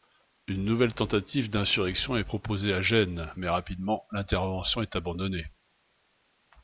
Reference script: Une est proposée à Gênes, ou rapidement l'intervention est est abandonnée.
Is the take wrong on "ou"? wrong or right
wrong